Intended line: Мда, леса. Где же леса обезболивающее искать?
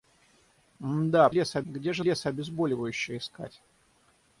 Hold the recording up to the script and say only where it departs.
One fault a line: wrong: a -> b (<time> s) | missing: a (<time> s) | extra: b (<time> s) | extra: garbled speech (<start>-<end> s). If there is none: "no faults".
no faults